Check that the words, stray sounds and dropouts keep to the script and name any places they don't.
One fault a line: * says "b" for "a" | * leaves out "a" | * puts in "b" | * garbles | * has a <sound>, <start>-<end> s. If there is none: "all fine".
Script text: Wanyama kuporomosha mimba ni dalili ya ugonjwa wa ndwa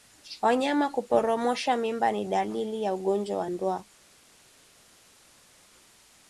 all fine